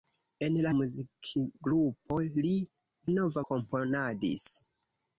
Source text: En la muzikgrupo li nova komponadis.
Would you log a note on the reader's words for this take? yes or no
no